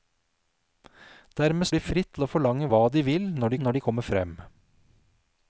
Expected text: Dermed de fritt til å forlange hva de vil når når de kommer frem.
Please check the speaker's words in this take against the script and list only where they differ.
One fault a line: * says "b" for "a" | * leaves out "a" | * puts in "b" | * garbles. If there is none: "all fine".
all fine